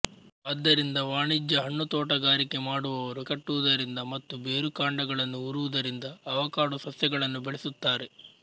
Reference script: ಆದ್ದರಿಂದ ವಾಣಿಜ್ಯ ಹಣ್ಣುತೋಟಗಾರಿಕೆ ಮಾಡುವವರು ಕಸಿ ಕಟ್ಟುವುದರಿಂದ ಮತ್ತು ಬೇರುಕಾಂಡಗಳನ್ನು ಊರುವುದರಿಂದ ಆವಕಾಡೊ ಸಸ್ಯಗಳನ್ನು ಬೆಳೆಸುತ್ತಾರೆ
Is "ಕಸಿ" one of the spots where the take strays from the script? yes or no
yes